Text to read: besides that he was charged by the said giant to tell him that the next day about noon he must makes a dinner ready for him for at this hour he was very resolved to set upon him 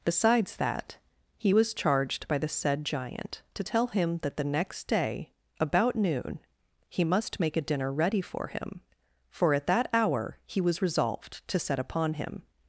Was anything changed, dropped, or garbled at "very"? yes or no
yes